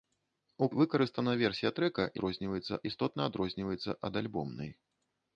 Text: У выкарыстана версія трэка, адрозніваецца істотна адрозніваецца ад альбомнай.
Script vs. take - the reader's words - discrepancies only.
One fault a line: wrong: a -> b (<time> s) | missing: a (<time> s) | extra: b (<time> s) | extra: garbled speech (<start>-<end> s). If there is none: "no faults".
no faults